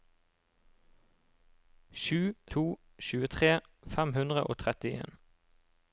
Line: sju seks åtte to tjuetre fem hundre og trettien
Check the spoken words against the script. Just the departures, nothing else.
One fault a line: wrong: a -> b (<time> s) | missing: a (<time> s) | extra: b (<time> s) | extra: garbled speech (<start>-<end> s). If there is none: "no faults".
missing: seks åtte (2.3 s)